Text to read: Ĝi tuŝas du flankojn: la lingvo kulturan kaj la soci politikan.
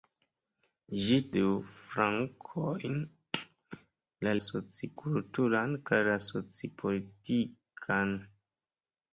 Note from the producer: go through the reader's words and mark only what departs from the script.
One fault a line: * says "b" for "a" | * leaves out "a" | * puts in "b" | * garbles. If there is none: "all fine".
* leaves out "tuŝas"
* says "soci" for "lingvo"